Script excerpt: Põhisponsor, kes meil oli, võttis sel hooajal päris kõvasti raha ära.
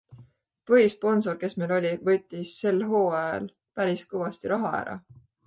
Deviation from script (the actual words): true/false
false